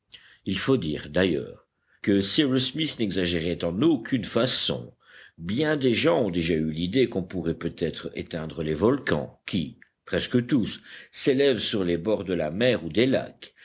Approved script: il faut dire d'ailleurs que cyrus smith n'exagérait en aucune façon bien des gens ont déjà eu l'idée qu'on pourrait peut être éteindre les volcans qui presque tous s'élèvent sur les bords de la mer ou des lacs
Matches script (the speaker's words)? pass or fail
pass